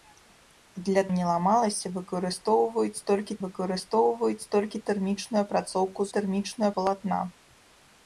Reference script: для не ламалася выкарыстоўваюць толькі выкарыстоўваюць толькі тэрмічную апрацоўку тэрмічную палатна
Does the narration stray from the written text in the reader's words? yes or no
no